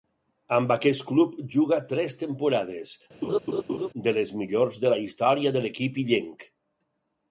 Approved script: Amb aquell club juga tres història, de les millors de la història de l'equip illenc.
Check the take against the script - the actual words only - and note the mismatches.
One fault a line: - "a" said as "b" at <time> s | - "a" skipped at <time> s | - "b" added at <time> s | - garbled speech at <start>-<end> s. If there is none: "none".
- "aquell" said as "aquest" at 0.8 s
- "història" said as "temporades" at 2.2 s